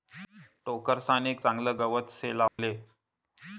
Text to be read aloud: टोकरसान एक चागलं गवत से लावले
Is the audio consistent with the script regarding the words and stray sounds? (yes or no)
no